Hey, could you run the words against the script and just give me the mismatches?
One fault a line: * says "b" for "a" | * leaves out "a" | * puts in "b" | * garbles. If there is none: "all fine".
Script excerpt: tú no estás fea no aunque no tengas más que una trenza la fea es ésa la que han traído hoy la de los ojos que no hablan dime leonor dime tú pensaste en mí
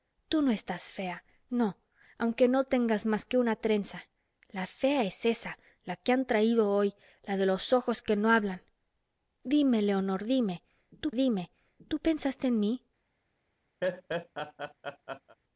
* puts in "dime tú"